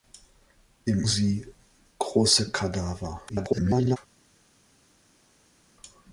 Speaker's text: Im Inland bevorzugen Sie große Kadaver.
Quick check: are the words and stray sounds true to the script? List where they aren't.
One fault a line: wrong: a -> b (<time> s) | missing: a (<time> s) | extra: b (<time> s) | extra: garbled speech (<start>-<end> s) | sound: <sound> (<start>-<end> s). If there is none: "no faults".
missing: Inland bevorzugen (1.1 s)
extra: garbled speech (3.3-4.0 s)